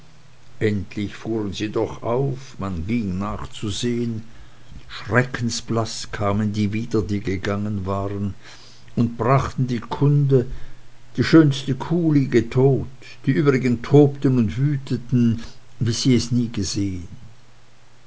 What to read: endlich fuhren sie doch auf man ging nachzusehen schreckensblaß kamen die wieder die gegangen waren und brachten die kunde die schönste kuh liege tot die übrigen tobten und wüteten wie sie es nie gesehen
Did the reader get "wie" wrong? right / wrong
right